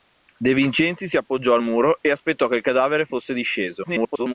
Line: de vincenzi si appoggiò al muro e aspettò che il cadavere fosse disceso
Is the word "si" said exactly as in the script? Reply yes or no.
yes